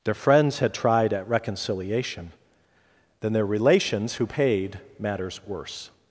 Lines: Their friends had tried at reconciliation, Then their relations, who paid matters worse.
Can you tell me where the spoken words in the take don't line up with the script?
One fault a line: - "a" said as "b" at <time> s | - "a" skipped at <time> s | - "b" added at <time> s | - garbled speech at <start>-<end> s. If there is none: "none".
none